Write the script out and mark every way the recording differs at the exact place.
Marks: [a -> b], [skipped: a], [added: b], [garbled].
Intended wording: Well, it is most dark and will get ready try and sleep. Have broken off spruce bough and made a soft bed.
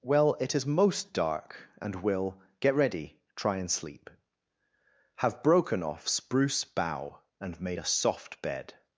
Well, it is most dark and will get ready try and sleep. Have broken off spruce bough and made a soft bed.